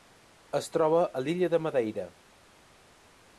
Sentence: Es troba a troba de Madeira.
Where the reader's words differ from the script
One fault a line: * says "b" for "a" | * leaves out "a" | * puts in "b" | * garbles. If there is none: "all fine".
* says "l'illa" for "troba"